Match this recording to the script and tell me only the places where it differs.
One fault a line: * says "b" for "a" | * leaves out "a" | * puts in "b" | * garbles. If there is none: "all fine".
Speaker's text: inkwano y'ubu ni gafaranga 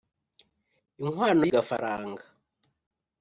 * leaves out "y'ubu ni"